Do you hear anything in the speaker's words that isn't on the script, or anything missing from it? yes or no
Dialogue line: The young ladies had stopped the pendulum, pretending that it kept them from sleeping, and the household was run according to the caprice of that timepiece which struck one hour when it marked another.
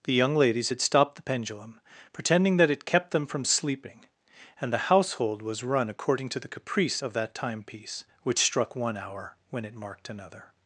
no